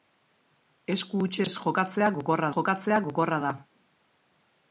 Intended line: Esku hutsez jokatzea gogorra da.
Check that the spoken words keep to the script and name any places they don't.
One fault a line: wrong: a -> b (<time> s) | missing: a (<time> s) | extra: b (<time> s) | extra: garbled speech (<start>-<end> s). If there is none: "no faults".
extra: jokatzea gogorra (2.6 s)